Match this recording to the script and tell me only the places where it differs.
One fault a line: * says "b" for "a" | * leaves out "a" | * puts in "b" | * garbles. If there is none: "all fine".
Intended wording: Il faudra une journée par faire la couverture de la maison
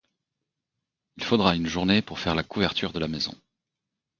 * says "pour" for "par"